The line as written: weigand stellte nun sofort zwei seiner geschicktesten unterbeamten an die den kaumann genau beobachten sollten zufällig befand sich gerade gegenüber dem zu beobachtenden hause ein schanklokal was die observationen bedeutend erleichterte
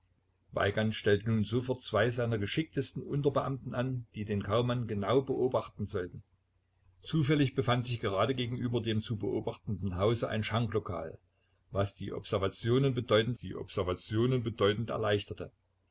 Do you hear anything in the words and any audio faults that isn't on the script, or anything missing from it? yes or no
yes